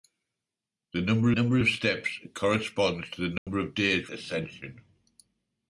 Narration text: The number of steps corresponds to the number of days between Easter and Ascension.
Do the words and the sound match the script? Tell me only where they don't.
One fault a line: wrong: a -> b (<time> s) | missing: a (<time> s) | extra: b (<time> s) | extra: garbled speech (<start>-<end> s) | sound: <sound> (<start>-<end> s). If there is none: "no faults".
extra: number (1.3 s)
sound: dropout (3.4-3.5 s)
missing: between Easter and (4.1 s)